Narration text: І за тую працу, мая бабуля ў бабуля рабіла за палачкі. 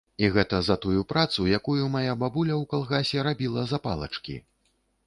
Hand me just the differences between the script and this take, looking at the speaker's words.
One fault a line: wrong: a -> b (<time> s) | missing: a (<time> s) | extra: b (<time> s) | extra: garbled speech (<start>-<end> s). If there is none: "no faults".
extra: гэта (0.3 s)
extra: якую (1.6 s)
wrong: бабуля -> калгасе (2.7 s)